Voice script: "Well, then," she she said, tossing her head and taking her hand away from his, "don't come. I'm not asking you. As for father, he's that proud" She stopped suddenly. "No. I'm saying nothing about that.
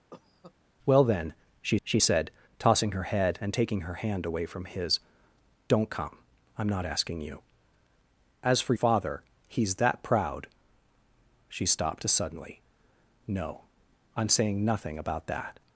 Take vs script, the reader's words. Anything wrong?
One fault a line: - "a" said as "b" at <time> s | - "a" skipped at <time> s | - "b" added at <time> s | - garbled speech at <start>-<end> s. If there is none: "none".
none